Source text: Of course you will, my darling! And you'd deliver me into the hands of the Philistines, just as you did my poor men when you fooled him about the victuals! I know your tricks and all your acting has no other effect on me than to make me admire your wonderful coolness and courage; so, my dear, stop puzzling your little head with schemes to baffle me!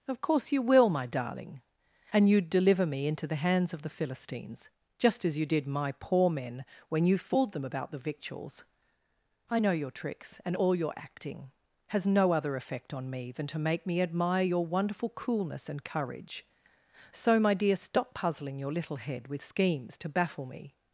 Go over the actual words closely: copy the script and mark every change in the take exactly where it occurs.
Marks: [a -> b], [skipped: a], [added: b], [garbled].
Of course you will, my darling! And you'd deliver me into the hands of the Philistines, just as you did my poor men when you fooled [him -> them] about the victuals! I know your tricks and all your acting has no other effect on me than to make me admire your wonderful coolness and courage; so, my dear, stop puzzling your little head with schemes to baffle me!